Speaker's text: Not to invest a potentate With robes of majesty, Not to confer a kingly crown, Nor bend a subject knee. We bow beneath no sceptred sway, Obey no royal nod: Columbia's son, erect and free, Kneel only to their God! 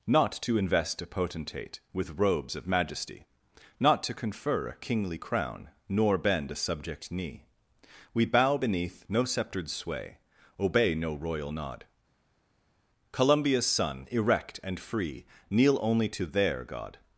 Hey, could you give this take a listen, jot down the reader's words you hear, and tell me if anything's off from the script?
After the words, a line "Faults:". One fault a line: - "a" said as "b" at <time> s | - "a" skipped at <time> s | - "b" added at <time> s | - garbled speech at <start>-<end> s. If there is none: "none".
Not to invest a potentate With robes of majesty, Not to confer a kingly crown, Nor bend a subject knee. We bow beneath no sceptred sway, Obey no royal nod: Columbia's son, erect and free, Kneel only to their God!
Faults:
none